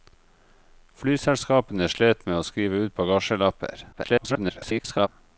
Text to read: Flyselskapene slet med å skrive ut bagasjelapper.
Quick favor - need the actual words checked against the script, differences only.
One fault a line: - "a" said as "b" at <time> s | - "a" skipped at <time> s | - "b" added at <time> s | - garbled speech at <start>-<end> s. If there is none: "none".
- garbled speech at 3.9-5.1 s